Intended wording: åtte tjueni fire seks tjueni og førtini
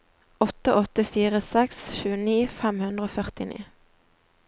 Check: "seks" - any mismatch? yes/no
no